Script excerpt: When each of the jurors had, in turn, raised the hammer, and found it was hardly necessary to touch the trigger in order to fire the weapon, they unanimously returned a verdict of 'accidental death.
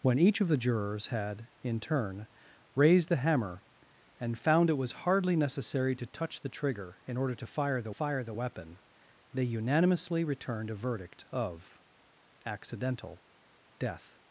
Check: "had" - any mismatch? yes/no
no